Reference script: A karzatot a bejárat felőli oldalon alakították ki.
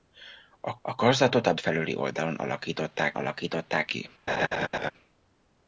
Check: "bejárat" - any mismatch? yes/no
yes